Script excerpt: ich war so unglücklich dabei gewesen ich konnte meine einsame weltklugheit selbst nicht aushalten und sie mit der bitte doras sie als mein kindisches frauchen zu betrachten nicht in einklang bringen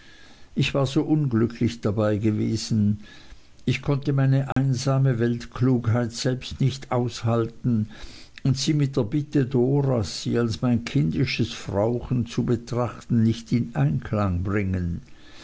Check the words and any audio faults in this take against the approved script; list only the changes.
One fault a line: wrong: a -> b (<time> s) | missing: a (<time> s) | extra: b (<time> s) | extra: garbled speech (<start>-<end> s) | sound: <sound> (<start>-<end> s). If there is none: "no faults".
sound: dropout (4.5-4.6 s)